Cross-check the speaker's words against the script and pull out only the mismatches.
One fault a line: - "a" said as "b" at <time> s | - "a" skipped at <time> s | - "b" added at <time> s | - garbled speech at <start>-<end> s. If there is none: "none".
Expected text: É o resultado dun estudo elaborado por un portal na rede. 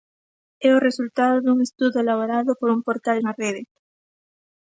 none